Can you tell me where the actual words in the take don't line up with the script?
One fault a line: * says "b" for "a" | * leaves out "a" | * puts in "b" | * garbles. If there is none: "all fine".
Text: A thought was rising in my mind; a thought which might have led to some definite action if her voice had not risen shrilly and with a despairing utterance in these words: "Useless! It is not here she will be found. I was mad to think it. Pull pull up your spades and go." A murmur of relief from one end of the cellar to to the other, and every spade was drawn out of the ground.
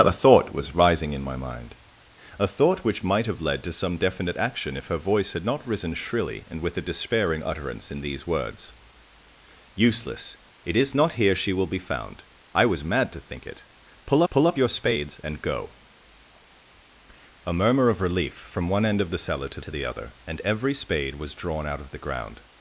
all fine